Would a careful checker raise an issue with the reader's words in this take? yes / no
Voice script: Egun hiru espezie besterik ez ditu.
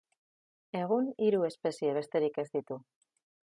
no